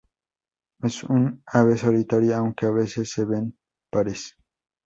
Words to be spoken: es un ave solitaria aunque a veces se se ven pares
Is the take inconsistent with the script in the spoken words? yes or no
yes